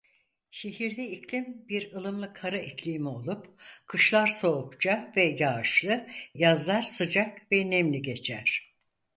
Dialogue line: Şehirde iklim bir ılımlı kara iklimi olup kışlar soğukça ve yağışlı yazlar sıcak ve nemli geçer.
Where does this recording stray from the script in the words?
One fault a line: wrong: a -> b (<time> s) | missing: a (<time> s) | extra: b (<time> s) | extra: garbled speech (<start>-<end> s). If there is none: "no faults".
no faults